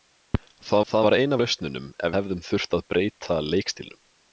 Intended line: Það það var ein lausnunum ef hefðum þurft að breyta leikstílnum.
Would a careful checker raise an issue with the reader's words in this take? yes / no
no